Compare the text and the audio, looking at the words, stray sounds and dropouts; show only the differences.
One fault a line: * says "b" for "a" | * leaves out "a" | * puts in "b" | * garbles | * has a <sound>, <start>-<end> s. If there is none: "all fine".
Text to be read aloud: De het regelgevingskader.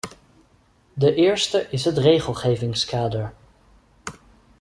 * puts in "eerste is"